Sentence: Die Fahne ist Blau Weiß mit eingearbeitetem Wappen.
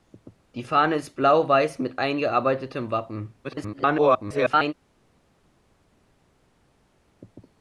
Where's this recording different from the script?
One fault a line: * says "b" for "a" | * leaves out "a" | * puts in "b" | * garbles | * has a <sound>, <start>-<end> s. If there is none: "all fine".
* garbles